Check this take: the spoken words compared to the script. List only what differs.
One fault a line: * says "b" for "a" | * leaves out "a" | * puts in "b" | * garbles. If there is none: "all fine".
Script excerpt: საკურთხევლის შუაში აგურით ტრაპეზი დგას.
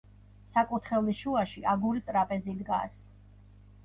all fine